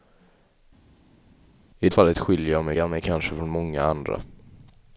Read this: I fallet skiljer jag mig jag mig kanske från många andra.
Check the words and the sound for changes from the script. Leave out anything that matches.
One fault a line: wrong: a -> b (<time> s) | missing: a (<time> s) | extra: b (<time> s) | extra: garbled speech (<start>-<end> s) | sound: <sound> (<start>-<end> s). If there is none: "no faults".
no faults